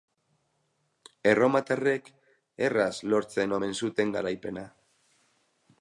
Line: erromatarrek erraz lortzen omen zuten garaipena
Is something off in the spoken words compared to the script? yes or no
no